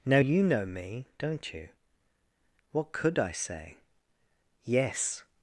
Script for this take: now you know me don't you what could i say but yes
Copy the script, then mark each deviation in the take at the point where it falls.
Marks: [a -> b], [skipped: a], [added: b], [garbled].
now you know me don't you what could i say [skipped: but] yes